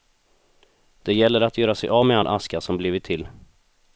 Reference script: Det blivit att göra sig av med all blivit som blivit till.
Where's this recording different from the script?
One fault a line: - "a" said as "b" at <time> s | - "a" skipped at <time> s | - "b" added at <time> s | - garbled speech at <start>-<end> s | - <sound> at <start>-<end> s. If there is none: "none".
- "blivit" said as "gäller" at 1.1 s
- "blivit" said as "aska" at 2.3 s